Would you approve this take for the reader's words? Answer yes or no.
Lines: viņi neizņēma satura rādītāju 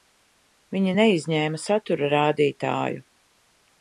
yes